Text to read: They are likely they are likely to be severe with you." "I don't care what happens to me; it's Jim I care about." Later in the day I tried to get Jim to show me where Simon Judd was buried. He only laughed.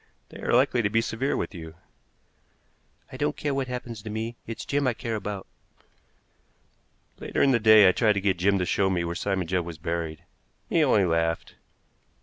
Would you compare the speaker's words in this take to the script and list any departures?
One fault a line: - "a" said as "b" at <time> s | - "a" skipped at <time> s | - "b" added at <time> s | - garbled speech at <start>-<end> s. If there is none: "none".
- "they are likely" skipped at 0.8 s